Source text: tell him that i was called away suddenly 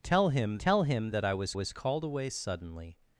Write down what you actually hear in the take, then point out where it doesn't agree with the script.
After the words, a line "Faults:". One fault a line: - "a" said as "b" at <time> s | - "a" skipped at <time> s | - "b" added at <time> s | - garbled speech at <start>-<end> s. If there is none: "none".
tell him tell him that i was was called away suddenly
Faults:
- "tell him" added at 0.6 s
- "was" added at 1.5 s